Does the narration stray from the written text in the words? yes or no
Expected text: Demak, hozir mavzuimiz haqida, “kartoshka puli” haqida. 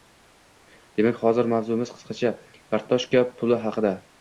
yes